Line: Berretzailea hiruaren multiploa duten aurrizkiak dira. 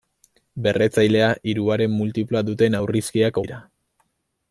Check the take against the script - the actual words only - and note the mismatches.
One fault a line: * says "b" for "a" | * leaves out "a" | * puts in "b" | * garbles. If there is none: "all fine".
all fine